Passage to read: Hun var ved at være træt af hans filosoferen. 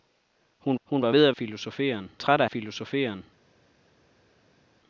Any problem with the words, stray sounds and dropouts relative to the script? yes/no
yes